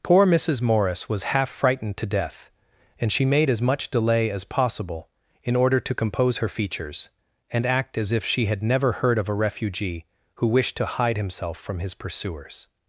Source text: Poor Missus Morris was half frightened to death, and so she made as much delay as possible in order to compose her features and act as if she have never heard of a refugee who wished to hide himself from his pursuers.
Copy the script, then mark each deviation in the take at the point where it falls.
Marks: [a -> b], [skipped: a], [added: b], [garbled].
Poor Missus Morris was half frightened to death, and [skipped: so] she made as much delay as possible in order to compose her features and act as if she [have -> had] never heard of a refugee who wished to hide himself from his pursuers.